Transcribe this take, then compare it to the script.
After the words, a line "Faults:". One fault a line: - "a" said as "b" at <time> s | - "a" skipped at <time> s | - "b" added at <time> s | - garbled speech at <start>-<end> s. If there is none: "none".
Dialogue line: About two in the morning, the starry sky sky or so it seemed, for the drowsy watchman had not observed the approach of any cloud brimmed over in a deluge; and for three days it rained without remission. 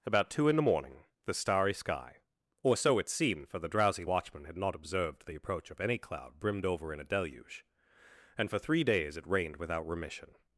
About two in the morning, the starry sky or so it seemed, for the drowsy watchman had not observed the approach of any cloud brimmed over in a deluge; and for three days it rained without remission.
Faults:
- "sky" skipped at 2.2 s